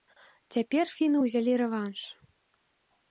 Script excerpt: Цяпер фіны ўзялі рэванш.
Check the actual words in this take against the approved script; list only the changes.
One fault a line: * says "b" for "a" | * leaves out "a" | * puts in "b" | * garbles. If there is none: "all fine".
all fine